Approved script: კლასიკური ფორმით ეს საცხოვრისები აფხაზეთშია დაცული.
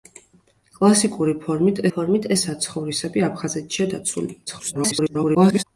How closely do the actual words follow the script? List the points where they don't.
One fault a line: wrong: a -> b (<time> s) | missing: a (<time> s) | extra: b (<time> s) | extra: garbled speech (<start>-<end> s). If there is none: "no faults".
extra: ფორმით (1.9 s)
extra: garbled speech (4.5-5.6 s)